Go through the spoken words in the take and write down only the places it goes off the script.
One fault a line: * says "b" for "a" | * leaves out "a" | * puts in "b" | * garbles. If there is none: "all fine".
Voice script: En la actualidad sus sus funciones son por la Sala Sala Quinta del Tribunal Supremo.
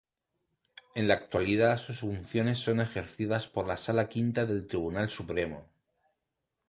* leaves out "sus"
* puts in "ejercidas"
* leaves out "Sala"